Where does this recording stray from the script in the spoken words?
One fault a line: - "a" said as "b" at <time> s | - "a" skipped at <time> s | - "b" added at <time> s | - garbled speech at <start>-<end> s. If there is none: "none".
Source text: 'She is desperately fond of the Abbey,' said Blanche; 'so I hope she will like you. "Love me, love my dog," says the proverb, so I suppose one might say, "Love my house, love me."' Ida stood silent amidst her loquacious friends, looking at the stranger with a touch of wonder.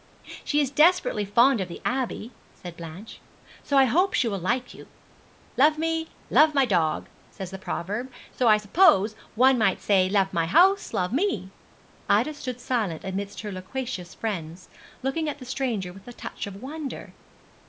none